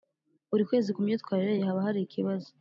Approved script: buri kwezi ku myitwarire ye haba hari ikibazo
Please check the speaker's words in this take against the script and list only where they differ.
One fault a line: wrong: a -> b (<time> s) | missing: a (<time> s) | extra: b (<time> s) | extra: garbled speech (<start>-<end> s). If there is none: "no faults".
no faults